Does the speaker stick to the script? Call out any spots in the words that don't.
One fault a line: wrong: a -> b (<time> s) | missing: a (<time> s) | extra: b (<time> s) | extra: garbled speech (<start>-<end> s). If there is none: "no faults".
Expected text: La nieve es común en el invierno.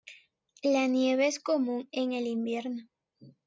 no faults